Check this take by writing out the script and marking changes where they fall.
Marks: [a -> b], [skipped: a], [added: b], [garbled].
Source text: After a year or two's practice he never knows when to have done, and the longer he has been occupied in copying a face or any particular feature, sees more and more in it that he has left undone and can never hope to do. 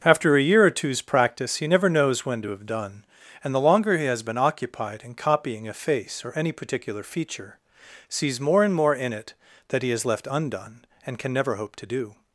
After a year or two's practice he never knows when to have done, and the longer he has been occupied in copying a face or any particular feature, sees more and more in it that he has left undone and can never hope to do.